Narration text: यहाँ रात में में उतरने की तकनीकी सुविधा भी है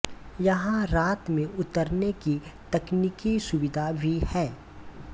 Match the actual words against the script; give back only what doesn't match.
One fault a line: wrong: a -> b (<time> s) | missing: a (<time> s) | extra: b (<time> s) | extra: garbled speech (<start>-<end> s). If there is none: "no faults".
missing: में (1.4 s)